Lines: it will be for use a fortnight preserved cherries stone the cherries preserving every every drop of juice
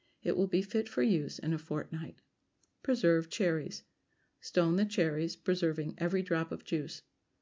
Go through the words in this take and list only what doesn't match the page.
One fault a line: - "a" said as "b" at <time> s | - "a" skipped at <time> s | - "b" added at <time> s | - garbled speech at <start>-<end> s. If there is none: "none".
- "fit" added at 0.6 s
- "in" added at 1.4 s
- "every" skipped at 6.2 s